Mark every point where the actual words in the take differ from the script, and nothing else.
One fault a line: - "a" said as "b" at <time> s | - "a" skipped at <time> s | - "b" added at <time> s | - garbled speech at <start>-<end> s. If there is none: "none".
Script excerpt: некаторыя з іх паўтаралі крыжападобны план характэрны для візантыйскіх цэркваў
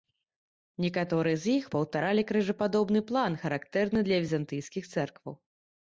none